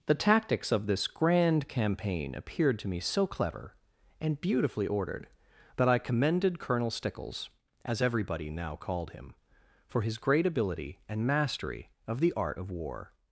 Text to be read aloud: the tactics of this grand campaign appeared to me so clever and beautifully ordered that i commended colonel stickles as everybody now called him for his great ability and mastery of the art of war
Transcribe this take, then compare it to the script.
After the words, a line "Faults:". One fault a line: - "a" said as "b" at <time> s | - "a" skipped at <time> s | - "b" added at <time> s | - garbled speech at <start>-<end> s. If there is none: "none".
the tactics of this grand campaign appeared to me so clever and beautifully ordered that i commended colonel stickles as everybody now called him for his great ability and mastery of the art of war
Faults:
none